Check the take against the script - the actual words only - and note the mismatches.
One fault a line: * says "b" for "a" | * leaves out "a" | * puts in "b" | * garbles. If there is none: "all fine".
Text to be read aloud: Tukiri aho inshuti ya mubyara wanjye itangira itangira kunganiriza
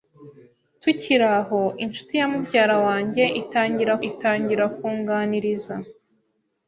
all fine